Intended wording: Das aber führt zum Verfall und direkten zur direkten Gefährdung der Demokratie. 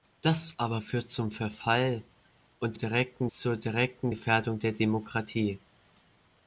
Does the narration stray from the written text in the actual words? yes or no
no